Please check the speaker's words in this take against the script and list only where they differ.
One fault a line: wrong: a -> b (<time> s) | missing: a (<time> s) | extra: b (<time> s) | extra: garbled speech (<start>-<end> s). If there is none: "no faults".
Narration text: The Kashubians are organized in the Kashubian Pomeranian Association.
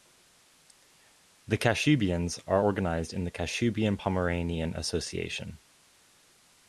no faults